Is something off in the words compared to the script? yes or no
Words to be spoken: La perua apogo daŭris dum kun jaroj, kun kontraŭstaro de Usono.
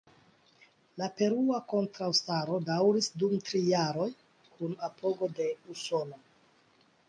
yes